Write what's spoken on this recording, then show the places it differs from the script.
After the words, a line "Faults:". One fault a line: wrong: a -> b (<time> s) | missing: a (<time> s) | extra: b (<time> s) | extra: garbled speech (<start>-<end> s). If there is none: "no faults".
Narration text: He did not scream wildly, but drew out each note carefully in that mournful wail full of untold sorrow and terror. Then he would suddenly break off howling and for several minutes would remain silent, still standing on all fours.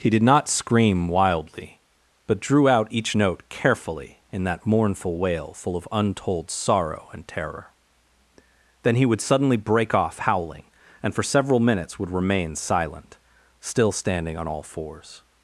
He did not scream wildly, but drew out each note carefully in that mournful wail full of untold sorrow and terror. Then he would suddenly break off howling and for several minutes would remain silent, still standing on all fours.
Faults:
no faults